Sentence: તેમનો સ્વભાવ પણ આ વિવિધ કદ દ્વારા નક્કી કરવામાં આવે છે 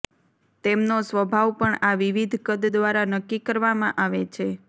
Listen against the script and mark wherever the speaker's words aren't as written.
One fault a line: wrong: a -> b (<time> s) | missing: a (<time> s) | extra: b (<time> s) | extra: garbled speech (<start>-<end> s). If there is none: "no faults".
no faults